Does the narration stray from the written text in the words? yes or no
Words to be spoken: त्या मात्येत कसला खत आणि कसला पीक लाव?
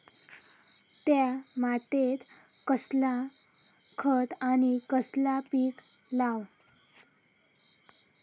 no